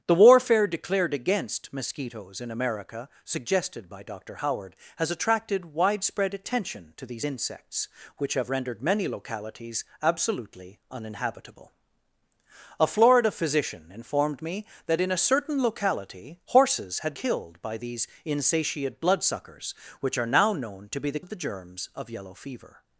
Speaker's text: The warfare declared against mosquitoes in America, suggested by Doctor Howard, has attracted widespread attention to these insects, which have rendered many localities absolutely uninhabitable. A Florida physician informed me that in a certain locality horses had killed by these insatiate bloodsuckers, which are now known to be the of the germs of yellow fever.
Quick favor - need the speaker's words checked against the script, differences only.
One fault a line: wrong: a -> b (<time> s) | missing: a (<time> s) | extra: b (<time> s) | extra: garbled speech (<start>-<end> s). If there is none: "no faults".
no faults